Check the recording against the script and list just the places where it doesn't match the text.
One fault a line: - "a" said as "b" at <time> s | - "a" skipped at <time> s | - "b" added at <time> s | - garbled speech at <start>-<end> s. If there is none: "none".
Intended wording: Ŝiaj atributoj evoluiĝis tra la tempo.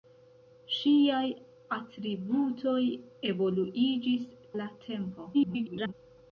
- "tra" skipped at 4.2 s
- garbled speech at 5.3-5.9 s